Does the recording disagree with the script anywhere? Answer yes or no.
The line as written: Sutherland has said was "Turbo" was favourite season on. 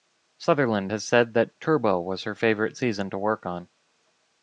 yes